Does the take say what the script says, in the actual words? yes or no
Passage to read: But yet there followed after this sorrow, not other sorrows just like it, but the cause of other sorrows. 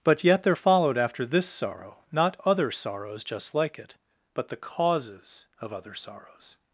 no